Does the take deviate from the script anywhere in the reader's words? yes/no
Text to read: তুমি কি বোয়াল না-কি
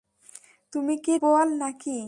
no